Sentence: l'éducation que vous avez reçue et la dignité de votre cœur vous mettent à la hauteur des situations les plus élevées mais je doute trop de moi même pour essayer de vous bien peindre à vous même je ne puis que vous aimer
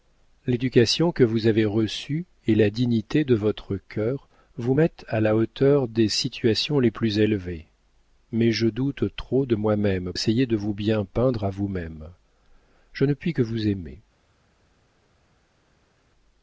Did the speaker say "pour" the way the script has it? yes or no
no